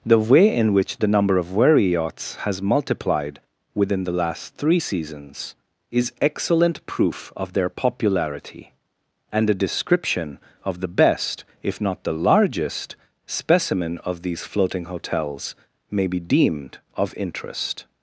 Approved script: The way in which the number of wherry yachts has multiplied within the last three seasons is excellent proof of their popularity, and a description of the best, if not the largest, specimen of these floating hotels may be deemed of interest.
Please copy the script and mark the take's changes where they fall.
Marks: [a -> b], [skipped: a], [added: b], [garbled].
The way in which the number of wherry yachts has multiplied within the last three seasons is excellent proof of their popularity, and a description of the best, if not the largest, specimen of these floating hotels may be deemed of interest.